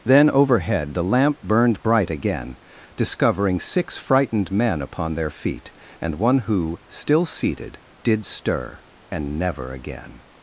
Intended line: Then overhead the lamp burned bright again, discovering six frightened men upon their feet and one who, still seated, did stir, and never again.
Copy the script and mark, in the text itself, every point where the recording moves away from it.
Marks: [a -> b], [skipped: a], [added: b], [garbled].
Then overhead the lamp burned bright again, discovering six frightened men upon their feet and one who, still seated, did stir, and never again.